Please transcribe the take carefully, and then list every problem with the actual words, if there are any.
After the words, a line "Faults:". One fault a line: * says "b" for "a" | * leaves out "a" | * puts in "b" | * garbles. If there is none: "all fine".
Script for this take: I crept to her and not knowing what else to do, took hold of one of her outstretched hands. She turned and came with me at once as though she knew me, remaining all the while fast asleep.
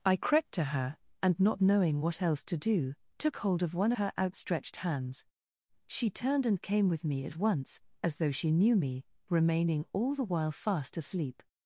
I crept to her and not knowing what else to do, took hold of one her outstretched hands. She turned and came with me at once as though she knew me, remaining all the while fast asleep.
Faults:
* leaves out "of"